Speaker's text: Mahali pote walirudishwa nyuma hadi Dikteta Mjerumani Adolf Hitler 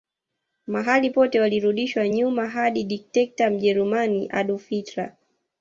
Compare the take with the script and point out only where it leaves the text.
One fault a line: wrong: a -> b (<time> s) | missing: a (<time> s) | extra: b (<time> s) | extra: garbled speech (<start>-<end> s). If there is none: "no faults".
no faults